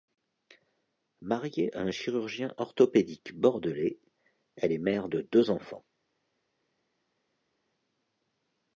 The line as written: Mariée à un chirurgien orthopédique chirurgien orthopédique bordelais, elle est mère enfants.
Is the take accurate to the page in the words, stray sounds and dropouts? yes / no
no